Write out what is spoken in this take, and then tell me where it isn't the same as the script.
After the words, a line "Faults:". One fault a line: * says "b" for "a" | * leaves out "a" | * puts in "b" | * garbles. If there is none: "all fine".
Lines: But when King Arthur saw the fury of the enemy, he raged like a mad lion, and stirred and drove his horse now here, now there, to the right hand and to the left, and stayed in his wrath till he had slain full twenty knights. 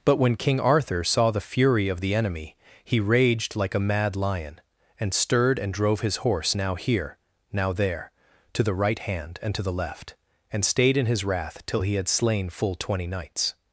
But when King Arthur saw the fury of the enemy, he raged like a mad lion, and stirred and drove his horse now here, now there, to the right hand and to the left, and stayed in his wrath till he had slain full twenty knights.
Faults:
all fine